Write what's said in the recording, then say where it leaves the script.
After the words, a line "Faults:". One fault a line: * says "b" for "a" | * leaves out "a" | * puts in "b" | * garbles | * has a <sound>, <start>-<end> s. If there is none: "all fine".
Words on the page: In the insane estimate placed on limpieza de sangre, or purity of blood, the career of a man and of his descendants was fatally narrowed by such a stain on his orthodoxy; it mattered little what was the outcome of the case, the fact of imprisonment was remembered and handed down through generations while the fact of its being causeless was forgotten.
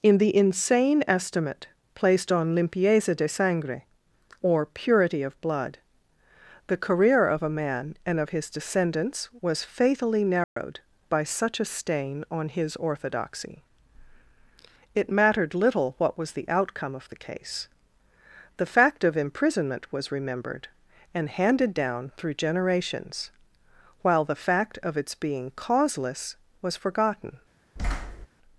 In the insane estimate placed on limpieza de sangre, or purity of blood, the career of a man and of his descendants was fatally narrowed by such a stain on his orthodoxy; it mattered little what was the outcome of the case, the fact of imprisonment was remembered and handed down through generations while the fact of its being causeless was forgotten.
Faults:
* has a dropout, 10.4-10.6 s
* has a thud, 27.8-28.3 s